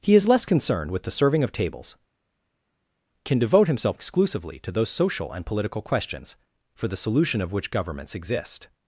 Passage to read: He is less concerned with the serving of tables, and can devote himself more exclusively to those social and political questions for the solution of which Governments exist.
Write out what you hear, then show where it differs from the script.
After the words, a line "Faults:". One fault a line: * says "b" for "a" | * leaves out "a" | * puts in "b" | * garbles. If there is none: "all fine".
He is less concerned with the serving of tables, can devote himself exclusively to those social and political questions for the solution of which Governments exist.
Faults:
* leaves out "and"
* leaves out "more"